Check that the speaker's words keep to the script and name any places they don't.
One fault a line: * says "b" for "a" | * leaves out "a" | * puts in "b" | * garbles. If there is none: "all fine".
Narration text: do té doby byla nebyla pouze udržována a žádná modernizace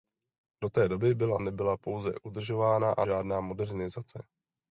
all fine